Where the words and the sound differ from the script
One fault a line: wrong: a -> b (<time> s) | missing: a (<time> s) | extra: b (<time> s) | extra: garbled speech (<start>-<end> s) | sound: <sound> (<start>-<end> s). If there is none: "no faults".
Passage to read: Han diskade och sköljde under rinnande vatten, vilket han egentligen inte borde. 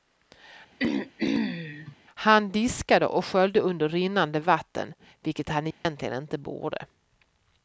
sound: throat clearing (0.8-2.0 s)
sound: dropout (5.7-5.9 s)